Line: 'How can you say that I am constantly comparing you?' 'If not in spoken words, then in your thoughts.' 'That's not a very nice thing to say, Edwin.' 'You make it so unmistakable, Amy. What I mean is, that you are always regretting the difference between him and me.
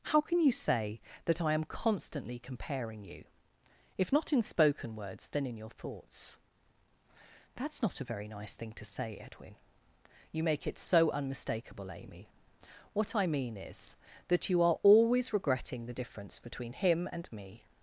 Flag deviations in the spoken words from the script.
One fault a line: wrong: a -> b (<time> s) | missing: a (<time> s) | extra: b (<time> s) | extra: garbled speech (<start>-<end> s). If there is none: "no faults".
no faults